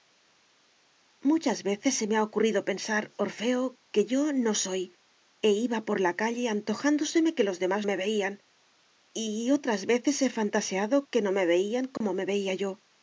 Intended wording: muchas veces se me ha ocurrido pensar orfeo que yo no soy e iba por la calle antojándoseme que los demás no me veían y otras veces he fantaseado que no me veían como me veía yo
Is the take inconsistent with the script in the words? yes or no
yes